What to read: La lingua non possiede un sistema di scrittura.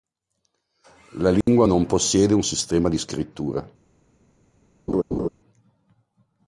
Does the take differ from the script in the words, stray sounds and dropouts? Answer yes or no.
yes